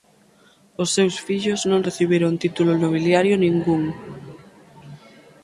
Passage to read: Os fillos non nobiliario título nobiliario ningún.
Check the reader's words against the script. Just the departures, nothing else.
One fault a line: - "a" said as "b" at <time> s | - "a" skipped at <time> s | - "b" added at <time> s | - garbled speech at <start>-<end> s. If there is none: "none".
- "seus" added at 0.9 s
- "nobiliario" said as "recibiron" at 1.9 s